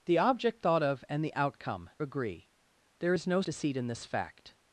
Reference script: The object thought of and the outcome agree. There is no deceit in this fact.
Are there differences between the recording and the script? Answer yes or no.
no